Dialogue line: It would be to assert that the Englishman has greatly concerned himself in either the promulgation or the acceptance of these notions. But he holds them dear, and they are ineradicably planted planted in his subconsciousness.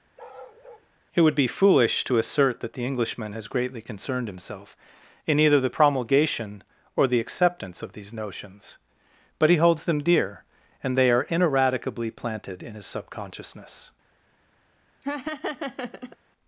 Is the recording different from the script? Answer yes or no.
yes